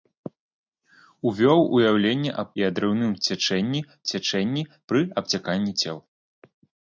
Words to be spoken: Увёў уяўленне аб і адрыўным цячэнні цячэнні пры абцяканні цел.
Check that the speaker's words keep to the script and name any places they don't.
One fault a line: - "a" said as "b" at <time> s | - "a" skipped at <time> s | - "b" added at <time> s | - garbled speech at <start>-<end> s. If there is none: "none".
none